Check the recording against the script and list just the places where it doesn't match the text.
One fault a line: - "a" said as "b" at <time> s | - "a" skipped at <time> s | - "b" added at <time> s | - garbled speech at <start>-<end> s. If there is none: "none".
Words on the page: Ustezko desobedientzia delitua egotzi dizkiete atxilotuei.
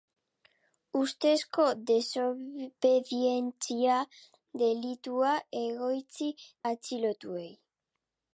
- "dizkiete" skipped at 6.3 s